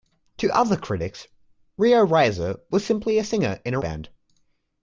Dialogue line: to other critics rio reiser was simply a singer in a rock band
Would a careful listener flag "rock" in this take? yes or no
yes